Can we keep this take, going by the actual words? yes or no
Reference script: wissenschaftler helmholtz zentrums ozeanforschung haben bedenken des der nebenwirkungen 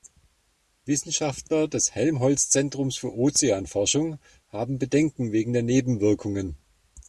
no